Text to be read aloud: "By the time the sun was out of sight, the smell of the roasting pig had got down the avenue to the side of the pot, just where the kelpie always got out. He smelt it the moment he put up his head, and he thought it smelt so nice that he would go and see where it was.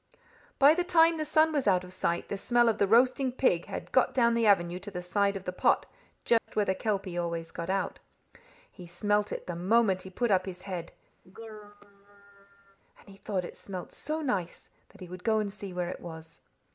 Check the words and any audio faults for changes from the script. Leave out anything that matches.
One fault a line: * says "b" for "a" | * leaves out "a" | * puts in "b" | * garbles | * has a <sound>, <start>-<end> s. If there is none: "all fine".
* has a dropout, 6.4-6.5 s
* has a throat clearing, 11.2-12.8 s